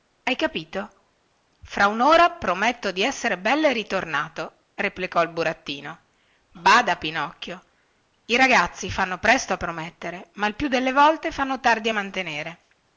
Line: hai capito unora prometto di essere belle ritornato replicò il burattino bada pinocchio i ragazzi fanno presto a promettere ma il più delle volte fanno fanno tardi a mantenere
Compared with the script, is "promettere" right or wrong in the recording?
right